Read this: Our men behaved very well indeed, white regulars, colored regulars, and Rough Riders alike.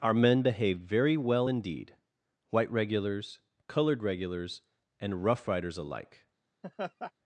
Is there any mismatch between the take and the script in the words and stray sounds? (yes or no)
yes